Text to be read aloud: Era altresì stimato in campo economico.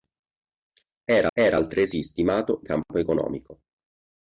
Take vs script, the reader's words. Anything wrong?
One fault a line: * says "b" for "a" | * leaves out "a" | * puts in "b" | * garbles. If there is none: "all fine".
* puts in "era"
* leaves out "in"